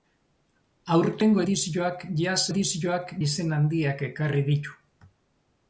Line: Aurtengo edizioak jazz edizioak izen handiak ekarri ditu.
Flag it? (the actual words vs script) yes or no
no